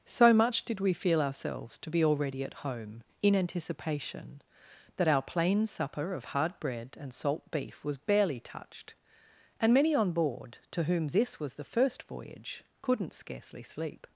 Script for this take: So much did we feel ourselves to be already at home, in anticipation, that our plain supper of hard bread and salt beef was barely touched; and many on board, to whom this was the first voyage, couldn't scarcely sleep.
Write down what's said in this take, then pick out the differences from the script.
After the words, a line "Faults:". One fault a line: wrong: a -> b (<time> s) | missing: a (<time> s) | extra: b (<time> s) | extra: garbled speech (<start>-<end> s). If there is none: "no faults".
So much did we feel ourselves to be already at home, in anticipation, that our plain supper of hard bread and salt beef was barely touched; and many on board, to whom this was the first voyage, couldn't scarcely sleep.
Faults:
no faults